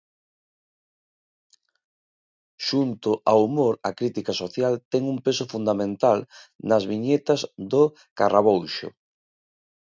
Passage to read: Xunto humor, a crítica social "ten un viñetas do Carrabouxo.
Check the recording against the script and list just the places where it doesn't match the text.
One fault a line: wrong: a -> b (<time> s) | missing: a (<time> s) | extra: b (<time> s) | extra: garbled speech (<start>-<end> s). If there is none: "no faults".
extra: ao (3.3 s)
extra: peso fundamental nas (5.2 s)